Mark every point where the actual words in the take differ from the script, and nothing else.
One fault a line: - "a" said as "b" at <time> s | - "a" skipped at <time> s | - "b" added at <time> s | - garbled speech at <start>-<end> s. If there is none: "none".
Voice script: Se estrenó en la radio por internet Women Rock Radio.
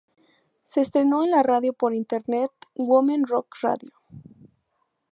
none